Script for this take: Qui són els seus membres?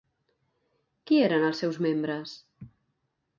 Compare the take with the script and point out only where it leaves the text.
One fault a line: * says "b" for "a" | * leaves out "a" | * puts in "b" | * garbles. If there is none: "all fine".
* says "eren" for "són"